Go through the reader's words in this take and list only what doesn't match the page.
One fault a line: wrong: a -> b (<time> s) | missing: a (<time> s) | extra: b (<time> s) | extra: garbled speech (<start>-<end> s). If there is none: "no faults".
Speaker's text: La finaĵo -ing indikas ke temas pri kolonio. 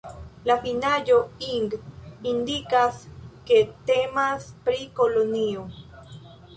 no faults